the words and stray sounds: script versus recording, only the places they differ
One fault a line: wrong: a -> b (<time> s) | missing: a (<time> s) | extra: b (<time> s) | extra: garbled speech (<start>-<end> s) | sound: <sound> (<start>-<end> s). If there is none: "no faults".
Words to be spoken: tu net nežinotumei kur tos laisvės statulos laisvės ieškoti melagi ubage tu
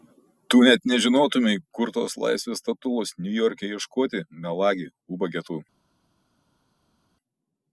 wrong: laisvės -> niujorke (3.3 s)